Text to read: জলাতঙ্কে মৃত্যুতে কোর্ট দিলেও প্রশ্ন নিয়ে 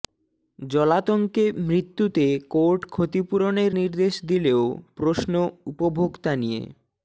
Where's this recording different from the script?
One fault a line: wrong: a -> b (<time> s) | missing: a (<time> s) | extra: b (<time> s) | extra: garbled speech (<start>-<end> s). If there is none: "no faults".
extra: ক্ষতিপূরণের নির্দেশ (2.9 s)
extra: উপভোক্তা (5.7 s)